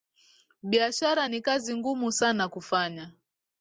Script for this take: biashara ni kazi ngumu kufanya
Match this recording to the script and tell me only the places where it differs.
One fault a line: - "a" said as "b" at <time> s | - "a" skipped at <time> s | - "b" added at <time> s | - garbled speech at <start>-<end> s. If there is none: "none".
- "sana" added at 2.1 s